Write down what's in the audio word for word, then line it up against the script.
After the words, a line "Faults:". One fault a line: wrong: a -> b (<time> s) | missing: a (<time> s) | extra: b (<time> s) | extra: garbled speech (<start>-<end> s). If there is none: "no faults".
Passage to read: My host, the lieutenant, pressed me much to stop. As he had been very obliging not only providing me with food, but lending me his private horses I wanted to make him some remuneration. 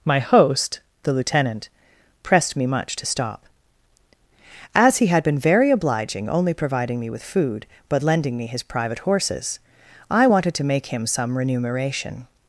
My host, the lieutenant, pressed me much to stop. As he had been very obliging only providing me with food, but lending me his private horses I wanted to make him some remuneration.
Faults:
missing: not (6.3 s)